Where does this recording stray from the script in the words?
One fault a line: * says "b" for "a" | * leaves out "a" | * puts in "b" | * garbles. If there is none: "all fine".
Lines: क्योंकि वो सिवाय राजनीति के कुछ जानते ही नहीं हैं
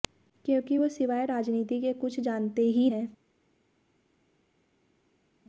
* leaves out "नहीं"